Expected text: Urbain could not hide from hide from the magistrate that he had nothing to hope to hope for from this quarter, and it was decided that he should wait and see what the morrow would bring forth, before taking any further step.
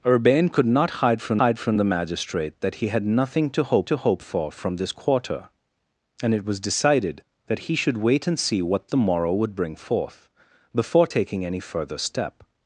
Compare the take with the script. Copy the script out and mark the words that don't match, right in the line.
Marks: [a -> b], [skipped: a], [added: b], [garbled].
Urbain could not hide from hide from the magistrate that he had nothing to hope to hope for from this quarter, and it was decided that he should wait and see what the morrow would bring forth, before taking any further step.